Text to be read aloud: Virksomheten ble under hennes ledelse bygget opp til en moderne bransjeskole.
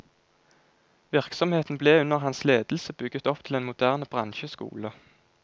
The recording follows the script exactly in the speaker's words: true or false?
false